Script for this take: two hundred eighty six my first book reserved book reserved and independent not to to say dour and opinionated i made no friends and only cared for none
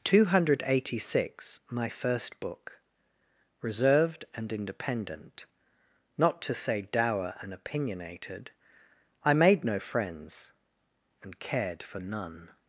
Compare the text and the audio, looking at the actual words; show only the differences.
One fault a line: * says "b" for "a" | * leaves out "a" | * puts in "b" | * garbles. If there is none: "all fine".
* leaves out "book reserved"
* leaves out "to"
* leaves out "only"